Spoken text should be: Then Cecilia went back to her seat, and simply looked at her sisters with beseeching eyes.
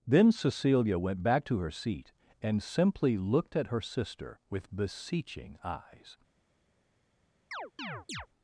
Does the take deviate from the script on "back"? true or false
false